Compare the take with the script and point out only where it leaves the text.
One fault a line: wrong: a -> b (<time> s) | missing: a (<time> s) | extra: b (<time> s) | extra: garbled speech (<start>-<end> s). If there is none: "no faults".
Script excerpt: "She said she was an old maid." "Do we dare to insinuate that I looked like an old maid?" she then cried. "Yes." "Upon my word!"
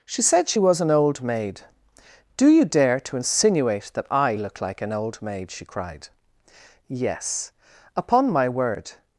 wrong: we -> you (2.5 s)
wrong: looked -> look (4.3 s)
missing: then (5.7 s)